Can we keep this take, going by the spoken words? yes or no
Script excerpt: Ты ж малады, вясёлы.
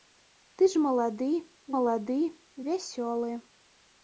no